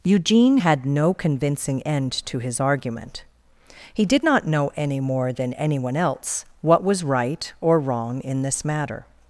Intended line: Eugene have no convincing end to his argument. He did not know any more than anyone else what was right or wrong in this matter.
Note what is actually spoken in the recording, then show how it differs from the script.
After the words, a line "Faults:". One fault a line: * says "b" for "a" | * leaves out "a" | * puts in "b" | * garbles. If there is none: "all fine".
Eugene had no convincing end to his argument. He did not know any more than anyone else what was right or wrong in this matter.
Faults:
* says "had" for "have"